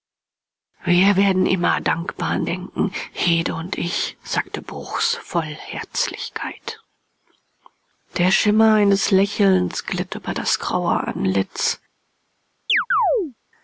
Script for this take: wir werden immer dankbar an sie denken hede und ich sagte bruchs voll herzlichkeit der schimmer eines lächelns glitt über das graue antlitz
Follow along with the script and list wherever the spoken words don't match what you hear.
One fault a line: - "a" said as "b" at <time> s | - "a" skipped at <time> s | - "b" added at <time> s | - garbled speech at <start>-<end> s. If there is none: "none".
- "sie" skipped at 2.5 s